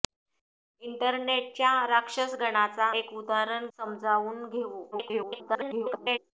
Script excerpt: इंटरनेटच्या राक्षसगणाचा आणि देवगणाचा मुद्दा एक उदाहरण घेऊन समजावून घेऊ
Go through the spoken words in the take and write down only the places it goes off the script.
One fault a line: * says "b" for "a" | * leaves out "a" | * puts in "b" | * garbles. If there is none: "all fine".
* leaves out "आणि देवगणाचा मुद्दा"
* leaves out "घेऊन"
* garbles